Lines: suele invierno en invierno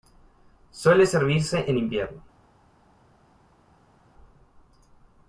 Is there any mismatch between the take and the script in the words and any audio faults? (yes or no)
yes